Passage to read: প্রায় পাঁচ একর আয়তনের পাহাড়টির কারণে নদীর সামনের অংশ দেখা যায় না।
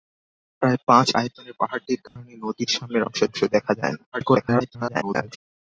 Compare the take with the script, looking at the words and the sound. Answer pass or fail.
fail